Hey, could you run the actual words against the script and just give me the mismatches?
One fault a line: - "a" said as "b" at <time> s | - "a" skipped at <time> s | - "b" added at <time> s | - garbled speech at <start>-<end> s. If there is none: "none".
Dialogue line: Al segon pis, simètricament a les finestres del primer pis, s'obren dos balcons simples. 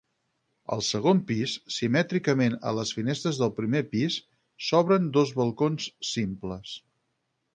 none